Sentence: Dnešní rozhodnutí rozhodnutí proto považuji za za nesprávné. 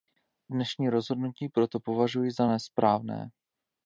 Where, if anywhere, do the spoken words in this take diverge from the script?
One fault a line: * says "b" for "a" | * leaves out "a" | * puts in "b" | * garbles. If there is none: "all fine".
* leaves out "rozhodnutí"
* leaves out "za"